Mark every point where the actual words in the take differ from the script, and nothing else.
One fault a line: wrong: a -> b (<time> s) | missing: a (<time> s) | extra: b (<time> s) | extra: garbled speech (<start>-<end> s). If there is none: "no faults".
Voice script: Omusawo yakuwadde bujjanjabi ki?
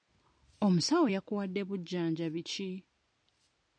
no faults